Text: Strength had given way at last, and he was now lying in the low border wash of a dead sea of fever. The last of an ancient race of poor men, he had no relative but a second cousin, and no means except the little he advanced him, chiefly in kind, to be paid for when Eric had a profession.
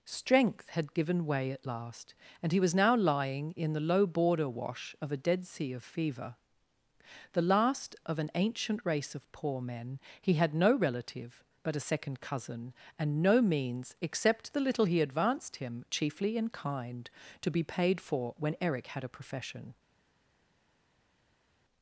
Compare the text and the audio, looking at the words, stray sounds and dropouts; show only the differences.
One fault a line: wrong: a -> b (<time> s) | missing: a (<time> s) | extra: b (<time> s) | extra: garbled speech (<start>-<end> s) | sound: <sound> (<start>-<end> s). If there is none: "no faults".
no faults